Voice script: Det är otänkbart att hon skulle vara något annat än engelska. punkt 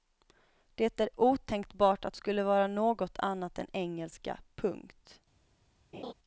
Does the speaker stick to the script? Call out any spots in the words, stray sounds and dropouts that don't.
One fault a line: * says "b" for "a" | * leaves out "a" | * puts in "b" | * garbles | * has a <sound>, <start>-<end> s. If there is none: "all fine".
* leaves out "hon"
* has a laugh, 5.9-6.1 s